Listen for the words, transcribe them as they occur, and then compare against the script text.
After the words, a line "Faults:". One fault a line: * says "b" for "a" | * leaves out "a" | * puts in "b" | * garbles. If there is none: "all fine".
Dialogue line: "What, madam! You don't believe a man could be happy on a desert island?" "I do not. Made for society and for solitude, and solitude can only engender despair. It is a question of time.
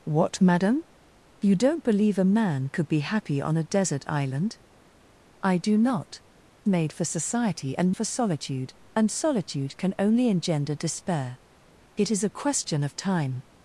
"What, madam! You don't believe a man could be happy on a desert island?" "I do not. Made for society and for solitude, and solitude can only engender despair. It is a question of time.
Faults:
all fine